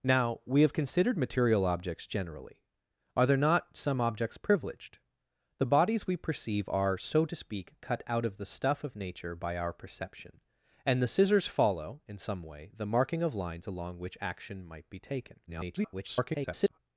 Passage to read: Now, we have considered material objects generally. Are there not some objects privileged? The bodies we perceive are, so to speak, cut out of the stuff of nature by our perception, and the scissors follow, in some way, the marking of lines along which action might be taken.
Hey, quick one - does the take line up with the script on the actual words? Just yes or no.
no